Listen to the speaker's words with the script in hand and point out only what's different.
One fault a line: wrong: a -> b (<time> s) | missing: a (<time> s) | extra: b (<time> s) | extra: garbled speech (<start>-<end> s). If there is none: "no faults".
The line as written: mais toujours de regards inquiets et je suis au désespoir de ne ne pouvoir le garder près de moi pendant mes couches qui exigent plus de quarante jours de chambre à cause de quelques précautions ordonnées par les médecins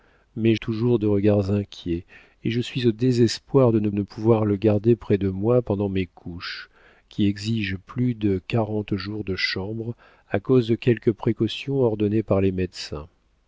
no faults